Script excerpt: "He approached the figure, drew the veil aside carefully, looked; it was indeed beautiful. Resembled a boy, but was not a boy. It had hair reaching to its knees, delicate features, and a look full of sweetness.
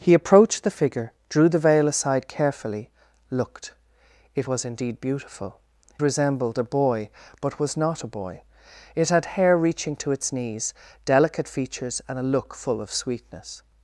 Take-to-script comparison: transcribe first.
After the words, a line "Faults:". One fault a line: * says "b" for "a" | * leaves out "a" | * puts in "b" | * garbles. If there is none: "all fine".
"He approached the figure, drew the veil aside carefully, looked; it was indeed beautiful. Resembled a boy, but was not a boy. It had hair reaching to its knees, delicate features, and a look full of sweetness.
Faults:
all fine